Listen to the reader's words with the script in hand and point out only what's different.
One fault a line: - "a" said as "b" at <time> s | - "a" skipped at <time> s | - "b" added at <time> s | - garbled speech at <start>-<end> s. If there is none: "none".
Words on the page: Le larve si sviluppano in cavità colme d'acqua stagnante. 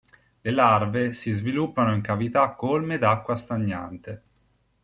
none